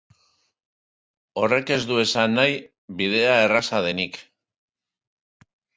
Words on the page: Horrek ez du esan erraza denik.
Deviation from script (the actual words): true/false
true